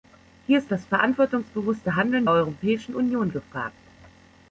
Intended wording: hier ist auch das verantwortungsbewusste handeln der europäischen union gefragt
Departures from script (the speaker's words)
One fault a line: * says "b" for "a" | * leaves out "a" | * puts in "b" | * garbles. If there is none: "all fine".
* leaves out "auch"
* leaves out "der"